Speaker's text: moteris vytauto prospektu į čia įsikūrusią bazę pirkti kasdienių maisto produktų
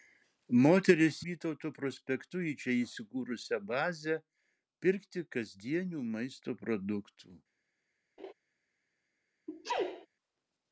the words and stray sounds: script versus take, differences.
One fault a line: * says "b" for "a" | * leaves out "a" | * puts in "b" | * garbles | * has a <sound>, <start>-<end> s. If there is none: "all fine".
* has a laugh, 8.2-8.3 s
* has a sneeze, 9.5-10.1 s